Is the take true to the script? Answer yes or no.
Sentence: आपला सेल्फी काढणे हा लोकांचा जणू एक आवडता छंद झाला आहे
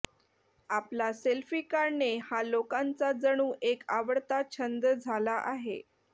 yes